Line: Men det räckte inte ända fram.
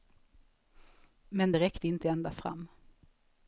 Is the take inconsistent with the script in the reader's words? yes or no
no